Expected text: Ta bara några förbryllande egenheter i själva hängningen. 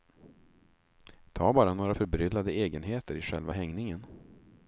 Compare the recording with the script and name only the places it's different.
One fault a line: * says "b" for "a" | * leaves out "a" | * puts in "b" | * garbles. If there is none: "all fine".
all fine